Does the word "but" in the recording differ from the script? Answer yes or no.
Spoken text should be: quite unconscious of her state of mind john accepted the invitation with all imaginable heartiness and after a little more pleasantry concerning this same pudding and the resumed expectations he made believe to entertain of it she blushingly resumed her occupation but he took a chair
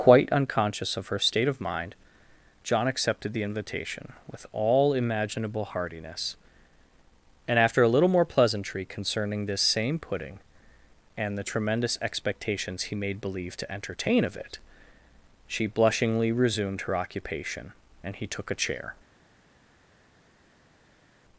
yes